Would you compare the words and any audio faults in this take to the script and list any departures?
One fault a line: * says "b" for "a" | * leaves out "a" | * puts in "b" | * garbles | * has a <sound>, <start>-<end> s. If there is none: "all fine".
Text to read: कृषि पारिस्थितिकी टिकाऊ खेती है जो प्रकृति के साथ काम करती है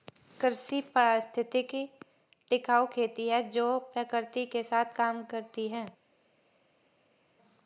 all fine